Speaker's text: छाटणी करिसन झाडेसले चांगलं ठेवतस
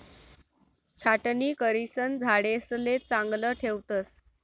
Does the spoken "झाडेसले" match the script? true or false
true